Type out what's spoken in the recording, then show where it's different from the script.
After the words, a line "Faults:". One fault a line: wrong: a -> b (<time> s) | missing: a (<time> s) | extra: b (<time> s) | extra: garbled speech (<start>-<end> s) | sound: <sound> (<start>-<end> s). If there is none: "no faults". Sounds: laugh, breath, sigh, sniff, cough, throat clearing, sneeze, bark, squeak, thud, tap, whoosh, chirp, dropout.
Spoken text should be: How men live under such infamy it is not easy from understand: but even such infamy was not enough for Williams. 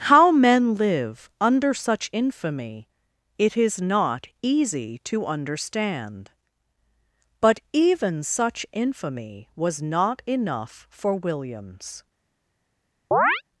How men live under such infamy it is not easy to understand: but even such infamy was not enough for Williams.
Faults:
wrong: from -> to (5.0 s)
sound: chirp (13.1-13.4 s)